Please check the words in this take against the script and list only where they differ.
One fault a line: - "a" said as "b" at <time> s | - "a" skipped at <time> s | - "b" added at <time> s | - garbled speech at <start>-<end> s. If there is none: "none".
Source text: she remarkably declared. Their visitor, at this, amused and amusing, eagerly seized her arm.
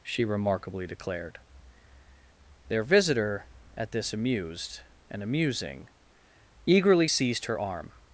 none